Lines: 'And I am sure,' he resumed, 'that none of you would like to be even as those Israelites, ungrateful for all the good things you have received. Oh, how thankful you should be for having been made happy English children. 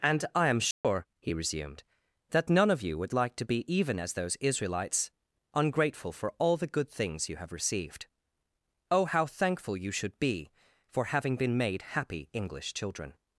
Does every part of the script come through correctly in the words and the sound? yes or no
no